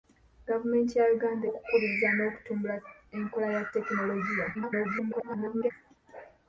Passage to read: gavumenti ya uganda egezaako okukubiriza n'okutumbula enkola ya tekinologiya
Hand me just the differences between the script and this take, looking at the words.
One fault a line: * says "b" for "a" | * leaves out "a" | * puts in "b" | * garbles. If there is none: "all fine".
* leaves out "egezaako"
* garbles